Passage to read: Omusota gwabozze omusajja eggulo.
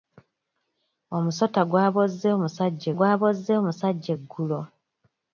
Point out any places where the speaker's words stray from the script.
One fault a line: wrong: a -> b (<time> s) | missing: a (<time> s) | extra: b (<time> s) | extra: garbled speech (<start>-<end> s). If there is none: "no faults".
extra: gwabozze omusajja (3.0 s)